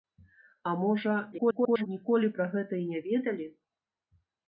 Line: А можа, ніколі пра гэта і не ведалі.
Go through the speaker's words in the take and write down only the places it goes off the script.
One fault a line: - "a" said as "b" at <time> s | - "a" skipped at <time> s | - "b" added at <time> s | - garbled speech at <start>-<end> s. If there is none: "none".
- garbled speech at 1.3-1.9 s